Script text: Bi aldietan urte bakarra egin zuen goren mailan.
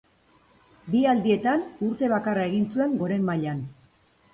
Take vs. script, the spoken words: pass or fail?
pass